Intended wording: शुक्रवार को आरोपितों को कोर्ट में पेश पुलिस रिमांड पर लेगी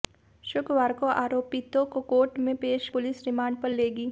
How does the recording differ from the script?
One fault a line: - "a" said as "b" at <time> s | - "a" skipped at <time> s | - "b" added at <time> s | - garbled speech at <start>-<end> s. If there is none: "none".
none